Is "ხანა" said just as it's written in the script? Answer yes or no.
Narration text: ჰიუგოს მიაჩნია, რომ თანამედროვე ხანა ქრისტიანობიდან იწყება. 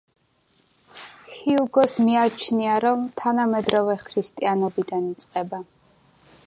no